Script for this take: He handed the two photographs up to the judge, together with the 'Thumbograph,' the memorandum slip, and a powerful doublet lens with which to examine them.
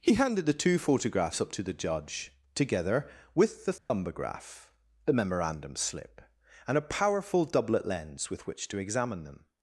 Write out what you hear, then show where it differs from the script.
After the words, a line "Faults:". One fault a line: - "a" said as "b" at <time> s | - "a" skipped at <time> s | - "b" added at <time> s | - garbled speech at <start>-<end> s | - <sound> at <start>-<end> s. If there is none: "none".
He handed the two photographs up to the judge, together with the 'Thumbograph,' the memorandum slip, and a powerful doublet lens with which to examine them.
Faults:
- dropout at 3.8-3.9 s